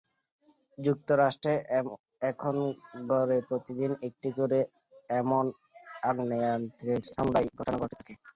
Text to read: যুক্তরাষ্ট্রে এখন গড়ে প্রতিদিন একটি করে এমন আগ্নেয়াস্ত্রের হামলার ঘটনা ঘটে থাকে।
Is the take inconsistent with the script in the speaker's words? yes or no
no